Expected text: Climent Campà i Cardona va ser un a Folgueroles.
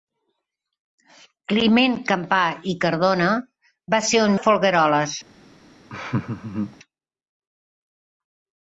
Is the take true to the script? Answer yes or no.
yes